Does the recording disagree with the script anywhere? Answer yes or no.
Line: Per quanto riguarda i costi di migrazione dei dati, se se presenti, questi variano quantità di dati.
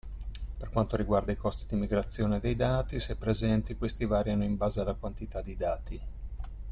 yes